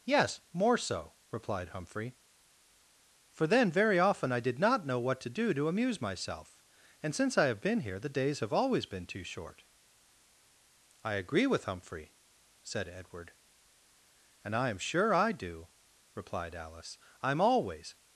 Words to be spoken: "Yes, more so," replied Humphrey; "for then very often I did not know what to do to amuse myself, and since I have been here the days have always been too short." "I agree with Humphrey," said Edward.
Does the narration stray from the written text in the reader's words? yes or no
yes